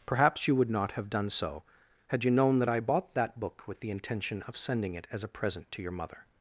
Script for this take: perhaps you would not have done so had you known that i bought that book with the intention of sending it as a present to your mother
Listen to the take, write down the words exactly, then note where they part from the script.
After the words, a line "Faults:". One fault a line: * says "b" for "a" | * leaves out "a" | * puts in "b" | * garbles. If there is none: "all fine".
perhaps you would not have done so had you known that i bought that book with the intention of sending it as a present to your mother
Faults:
all fine